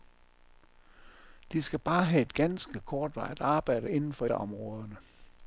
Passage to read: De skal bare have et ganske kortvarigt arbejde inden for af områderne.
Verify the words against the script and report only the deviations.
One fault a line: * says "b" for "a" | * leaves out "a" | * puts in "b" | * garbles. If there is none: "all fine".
all fine